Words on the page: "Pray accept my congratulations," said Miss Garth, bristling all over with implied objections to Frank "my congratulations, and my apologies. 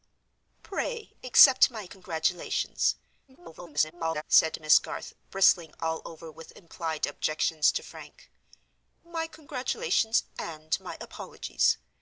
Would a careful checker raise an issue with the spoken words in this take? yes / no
yes